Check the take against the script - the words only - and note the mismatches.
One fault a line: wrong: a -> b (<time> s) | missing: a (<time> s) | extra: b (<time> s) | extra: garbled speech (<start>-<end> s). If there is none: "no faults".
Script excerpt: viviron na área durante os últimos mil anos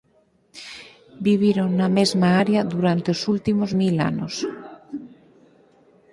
extra: mesma (2.0 s)